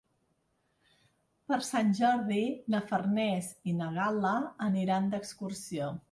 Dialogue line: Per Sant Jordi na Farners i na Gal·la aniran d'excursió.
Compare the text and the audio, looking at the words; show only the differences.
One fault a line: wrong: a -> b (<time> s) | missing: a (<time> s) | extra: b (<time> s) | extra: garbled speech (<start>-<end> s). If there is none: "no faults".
no faults